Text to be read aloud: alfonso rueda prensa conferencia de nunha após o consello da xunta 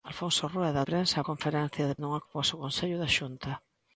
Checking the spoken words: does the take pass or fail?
pass